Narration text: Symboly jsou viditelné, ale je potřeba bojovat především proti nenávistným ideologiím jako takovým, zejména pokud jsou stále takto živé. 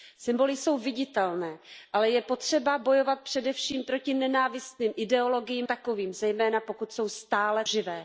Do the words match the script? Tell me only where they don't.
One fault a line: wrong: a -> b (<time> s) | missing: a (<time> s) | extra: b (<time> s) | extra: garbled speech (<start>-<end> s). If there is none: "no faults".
missing: jako (5.7 s)
missing: takto (7.6 s)